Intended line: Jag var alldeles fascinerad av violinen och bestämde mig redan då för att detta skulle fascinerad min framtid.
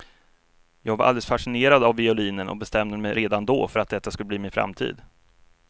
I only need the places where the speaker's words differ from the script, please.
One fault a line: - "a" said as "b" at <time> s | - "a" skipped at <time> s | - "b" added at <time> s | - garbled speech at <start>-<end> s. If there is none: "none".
- "fascinerad" said as "bli" at 4.3 s